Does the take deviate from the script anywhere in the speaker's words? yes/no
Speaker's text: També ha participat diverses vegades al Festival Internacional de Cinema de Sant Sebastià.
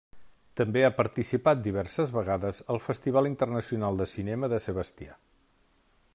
yes